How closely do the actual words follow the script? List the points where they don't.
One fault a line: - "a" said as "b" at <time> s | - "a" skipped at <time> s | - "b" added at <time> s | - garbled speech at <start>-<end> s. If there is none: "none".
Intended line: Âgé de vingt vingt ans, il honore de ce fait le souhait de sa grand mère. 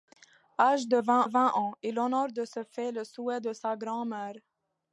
none